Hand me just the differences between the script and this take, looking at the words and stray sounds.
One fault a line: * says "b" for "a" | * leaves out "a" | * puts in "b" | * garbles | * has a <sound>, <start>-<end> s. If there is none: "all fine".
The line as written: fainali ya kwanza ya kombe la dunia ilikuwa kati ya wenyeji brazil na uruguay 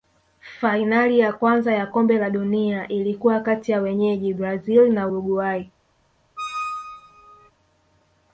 * has a squeak, 6.4-7.5 s